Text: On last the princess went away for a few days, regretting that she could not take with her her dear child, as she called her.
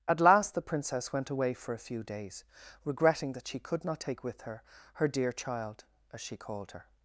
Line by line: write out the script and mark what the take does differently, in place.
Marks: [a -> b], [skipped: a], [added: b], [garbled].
[On -> At] last the princess went away for a few days, regretting that she could not take with her her dear child, as she called her.